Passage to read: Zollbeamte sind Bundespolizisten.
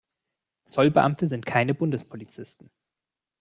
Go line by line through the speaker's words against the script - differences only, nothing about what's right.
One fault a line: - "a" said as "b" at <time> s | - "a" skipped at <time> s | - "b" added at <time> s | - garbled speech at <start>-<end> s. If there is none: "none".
- "keine" added at 1.5 s